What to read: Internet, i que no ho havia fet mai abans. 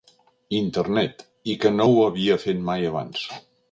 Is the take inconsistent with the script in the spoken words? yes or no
no